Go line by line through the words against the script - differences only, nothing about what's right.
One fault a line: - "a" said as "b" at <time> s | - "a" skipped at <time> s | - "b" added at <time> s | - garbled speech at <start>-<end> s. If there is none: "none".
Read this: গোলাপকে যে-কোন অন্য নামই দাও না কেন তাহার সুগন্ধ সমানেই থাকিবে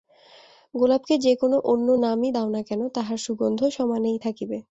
none